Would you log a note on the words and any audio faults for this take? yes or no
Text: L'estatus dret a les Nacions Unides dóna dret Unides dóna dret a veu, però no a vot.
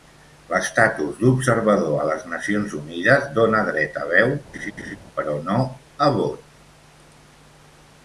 yes